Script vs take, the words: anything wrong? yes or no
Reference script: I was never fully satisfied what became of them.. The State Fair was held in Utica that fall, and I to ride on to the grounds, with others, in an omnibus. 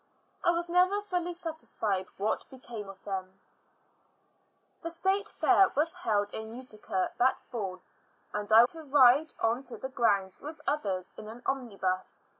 no